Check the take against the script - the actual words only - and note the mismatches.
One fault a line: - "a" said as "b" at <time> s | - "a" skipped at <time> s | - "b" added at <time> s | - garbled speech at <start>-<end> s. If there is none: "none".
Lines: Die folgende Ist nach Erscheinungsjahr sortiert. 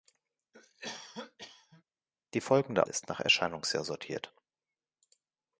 none